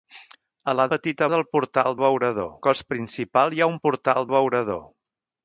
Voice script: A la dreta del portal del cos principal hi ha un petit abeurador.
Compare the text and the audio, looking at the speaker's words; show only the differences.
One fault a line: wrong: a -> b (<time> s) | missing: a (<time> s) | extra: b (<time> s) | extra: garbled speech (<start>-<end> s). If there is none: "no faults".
wrong: dreta -> petit (0.9 s)
wrong: del -> abeurador (2.0 s)
wrong: petit -> portal (3.9 s)